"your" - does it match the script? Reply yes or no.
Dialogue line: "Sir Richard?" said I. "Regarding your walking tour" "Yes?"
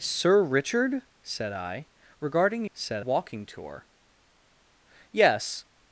no